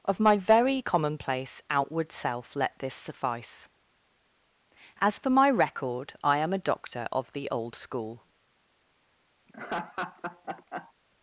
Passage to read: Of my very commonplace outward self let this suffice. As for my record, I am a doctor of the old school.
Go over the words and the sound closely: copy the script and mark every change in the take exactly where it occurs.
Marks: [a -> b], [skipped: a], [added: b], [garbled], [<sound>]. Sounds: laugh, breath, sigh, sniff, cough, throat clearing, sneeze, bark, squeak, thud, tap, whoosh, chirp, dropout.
Of my very commonplace outward self let this suffice. As for my record, I am a doctor of the old school. [laugh]